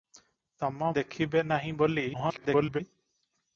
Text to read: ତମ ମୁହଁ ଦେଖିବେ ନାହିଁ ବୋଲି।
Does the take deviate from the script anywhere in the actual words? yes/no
yes